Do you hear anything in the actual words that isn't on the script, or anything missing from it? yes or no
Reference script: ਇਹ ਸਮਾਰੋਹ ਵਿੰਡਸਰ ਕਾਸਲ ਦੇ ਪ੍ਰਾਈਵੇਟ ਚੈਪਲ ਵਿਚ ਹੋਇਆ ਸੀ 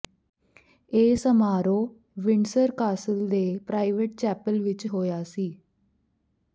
no